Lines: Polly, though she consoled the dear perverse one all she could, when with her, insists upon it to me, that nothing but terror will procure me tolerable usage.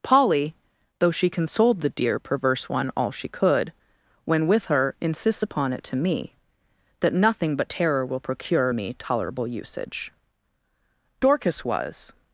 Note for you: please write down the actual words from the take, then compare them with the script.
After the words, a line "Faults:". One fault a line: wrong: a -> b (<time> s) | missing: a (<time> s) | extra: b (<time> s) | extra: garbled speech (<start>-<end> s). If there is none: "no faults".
Polly, though she consoled the dear perverse one all she could, when with her, insists upon it to me, that nothing but terror will procure me tolerable usage. Dorcas was
Faults:
extra: Dorcas was (11.2 s)